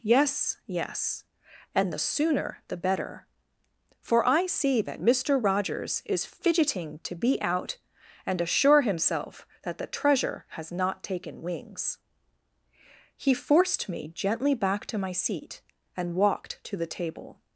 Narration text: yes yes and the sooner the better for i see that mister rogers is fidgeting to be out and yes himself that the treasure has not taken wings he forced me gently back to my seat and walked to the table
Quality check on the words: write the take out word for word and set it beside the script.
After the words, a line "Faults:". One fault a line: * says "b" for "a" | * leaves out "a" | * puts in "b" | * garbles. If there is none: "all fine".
yes yes and the sooner the better for i see that mister rogers is fidgeting to be out and assure himself that the treasure has not taken wings he forced me gently back to my seat and walked to the table
Faults:
* says "assure" for "yes"